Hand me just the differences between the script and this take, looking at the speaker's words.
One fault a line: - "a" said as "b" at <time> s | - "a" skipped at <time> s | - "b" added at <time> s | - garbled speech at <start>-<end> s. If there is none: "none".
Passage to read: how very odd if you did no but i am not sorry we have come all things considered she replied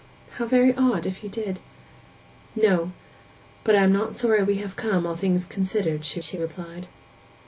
- "she" added at 6.2 s